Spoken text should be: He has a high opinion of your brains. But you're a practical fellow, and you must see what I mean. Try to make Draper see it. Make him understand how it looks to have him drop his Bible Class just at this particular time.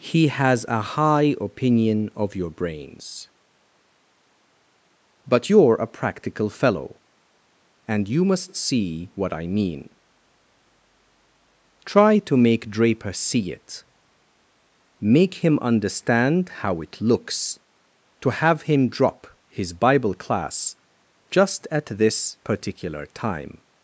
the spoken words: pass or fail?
pass